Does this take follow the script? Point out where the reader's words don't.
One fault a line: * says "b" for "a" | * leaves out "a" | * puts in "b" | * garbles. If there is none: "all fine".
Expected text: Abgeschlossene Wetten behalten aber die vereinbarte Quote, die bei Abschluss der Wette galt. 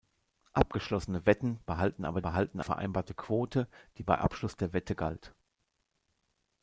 * says "behalten" for "die"